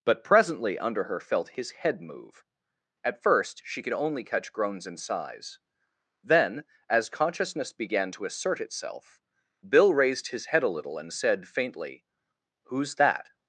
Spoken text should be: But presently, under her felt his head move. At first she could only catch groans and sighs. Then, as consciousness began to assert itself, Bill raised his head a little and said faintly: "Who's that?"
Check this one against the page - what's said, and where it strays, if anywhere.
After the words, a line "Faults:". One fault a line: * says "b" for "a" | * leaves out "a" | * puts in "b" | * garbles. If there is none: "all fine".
But presently, under her felt his head move. At first she could only catch groans and sighs. Then, as consciousness began to assert itself, Bill raised his head a little and said faintly: "Who's that?"
Faults:
all fine